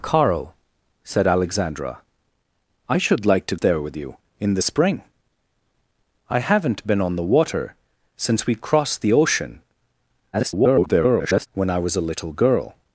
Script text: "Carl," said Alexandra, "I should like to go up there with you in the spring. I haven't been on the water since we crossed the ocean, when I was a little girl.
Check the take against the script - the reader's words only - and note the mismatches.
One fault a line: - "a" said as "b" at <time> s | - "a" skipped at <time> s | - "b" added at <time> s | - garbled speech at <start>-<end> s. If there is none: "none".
- "go up" skipped at 3.5 s
- garbled speech at 10.3-11.5 s